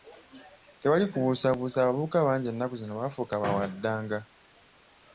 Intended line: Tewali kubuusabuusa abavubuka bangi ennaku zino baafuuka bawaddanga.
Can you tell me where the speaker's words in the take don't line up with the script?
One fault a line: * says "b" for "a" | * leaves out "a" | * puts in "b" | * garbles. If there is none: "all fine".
all fine